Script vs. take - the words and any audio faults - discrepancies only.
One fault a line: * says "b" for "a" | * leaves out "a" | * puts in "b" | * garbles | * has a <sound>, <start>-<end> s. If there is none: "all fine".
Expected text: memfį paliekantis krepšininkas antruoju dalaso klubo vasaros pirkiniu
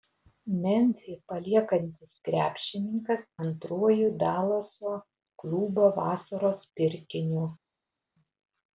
all fine